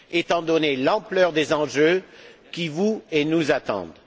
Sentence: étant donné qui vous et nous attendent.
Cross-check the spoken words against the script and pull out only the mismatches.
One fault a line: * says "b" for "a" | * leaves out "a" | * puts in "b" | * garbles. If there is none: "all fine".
* puts in "l'ampleur des enjeux"